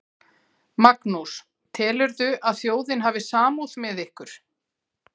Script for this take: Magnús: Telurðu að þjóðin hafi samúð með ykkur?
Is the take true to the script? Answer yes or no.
yes